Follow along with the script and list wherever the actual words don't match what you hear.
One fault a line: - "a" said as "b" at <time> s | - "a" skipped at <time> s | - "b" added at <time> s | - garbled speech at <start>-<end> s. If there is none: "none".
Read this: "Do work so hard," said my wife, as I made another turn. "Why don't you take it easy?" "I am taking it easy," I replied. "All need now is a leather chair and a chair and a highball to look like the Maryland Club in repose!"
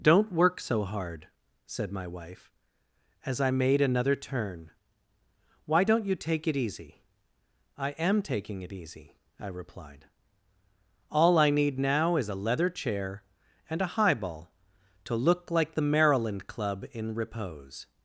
- "Do" said as "Don't" at 0.0 s
- "I" added at 11.4 s
- "chair and a" skipped at 13.9 s